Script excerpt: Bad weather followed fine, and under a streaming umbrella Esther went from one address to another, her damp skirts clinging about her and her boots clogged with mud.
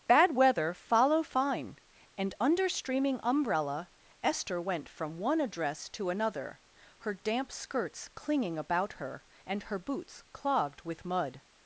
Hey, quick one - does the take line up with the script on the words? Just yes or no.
no